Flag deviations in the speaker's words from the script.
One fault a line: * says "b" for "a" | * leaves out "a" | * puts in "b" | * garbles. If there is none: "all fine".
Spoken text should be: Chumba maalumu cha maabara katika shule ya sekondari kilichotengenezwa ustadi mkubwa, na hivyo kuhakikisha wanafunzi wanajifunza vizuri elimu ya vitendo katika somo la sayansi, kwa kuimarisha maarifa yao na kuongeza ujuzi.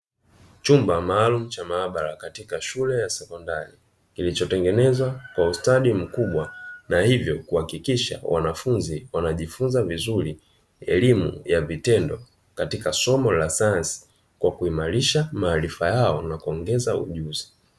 * puts in "kwa"